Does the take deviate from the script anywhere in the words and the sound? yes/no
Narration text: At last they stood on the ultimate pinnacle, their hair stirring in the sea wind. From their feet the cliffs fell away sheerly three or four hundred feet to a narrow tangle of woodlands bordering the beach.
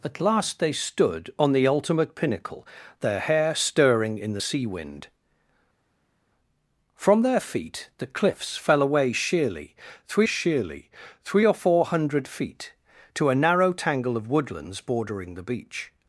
yes